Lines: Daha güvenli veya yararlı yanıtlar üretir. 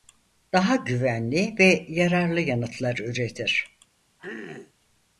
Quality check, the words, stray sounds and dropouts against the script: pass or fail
fail